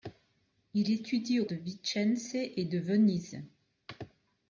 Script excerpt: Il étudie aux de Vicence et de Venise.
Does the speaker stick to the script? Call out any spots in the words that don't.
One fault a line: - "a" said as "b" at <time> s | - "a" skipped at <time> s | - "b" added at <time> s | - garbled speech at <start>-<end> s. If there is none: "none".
none